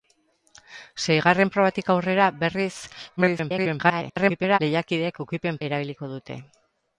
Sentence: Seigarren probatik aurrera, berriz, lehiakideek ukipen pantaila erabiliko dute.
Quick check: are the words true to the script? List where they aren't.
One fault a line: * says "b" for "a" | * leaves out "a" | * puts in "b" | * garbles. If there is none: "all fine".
* garbles
* leaves out "pantaila"